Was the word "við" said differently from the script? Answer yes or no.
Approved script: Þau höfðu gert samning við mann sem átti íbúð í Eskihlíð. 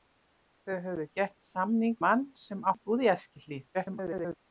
yes